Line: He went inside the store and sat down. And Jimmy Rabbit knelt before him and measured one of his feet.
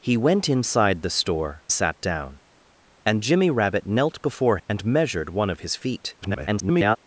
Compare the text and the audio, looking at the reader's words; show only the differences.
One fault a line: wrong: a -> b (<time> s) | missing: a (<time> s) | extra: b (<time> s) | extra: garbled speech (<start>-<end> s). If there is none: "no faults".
missing: and (1.6 s)
missing: him (4.6 s)
extra: garbled speech (6.2-7.0 s)